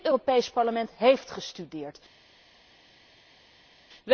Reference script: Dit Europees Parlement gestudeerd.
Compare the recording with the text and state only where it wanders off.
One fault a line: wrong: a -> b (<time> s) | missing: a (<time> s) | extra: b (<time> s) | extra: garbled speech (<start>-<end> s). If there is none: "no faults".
extra: heeft (1.0 s)